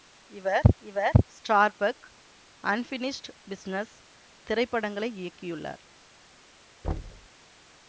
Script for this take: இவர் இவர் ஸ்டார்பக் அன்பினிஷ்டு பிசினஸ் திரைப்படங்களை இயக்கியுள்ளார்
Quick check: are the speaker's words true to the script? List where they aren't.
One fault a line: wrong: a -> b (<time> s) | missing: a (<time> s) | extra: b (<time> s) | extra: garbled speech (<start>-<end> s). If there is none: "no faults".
no faults